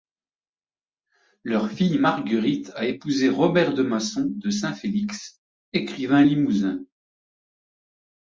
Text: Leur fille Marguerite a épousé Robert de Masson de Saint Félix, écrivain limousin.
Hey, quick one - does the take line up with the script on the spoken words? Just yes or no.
yes